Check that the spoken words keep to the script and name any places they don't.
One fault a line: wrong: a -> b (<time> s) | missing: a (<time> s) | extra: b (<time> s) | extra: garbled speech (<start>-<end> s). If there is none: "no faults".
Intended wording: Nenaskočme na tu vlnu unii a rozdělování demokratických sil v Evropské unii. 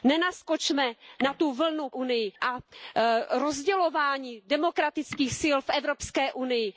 no faults